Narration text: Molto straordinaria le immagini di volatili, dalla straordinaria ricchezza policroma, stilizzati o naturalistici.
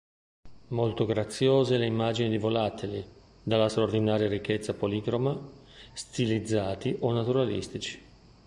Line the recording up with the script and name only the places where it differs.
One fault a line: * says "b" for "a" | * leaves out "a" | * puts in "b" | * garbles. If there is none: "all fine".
* says "graziose" for "straordinaria"